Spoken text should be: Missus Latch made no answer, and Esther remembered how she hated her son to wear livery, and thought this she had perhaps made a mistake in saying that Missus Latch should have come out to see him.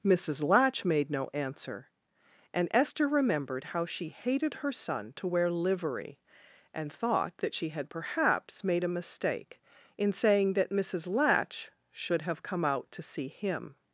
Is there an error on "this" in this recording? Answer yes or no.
yes